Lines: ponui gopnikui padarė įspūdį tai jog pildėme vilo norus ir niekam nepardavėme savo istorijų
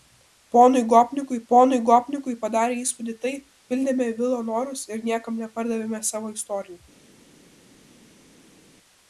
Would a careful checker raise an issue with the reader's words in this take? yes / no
yes